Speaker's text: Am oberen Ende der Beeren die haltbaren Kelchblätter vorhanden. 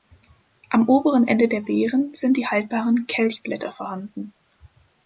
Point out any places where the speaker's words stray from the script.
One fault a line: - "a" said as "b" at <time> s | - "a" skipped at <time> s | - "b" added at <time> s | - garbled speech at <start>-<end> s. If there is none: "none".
- "sind" added at 2.1 s